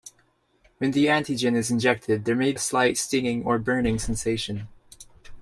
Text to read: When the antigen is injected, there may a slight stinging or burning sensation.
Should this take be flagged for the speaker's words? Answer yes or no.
no